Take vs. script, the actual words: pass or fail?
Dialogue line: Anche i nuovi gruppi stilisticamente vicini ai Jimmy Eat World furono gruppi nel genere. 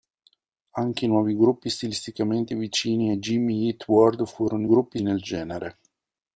pass